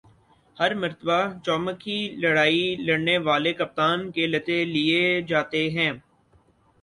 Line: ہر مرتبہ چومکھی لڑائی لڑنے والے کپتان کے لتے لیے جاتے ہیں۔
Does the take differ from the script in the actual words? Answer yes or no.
no